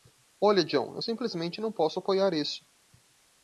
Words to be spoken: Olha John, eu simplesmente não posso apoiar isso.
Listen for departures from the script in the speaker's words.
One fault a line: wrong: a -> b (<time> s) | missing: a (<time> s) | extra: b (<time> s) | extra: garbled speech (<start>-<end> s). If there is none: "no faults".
no faults